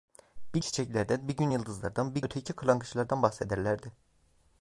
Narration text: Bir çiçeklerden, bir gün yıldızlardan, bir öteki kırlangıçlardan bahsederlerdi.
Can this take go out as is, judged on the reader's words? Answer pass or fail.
pass